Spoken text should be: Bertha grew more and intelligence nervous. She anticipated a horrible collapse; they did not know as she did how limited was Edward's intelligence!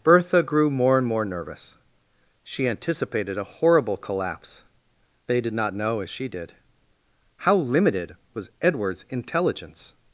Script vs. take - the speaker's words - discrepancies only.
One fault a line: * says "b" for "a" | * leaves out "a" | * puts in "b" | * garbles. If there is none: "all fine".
* says "more" for "intelligence"